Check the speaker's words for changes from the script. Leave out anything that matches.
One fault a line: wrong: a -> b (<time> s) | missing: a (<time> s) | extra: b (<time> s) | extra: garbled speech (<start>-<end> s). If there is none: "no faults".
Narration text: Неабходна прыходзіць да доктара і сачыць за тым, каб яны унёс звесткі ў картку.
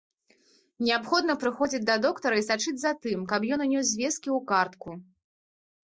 wrong: яны -> ён (3.6 s)